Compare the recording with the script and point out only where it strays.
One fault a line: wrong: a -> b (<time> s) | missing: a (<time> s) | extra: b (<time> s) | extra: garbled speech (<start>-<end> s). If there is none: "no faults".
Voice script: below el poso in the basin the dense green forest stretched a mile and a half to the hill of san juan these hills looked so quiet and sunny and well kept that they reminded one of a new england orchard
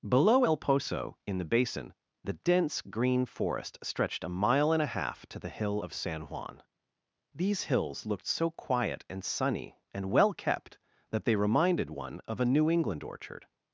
no faults